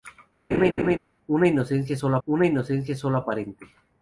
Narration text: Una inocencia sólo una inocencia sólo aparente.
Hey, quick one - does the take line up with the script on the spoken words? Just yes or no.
yes